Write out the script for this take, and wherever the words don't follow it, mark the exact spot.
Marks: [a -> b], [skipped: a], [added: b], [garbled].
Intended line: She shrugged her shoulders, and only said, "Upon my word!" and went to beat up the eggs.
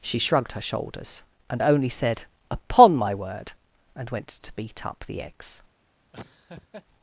She shrugged her shoulders, and only said, "Upon my word!" and went to beat up the eggs.